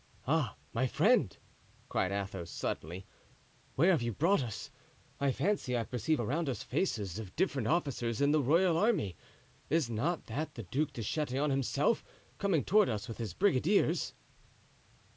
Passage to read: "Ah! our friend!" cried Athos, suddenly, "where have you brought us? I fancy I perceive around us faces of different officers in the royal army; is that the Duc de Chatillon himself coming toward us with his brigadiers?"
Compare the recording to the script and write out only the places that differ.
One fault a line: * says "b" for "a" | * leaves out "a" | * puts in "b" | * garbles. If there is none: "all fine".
* says "my" for "our"
* puts in "not"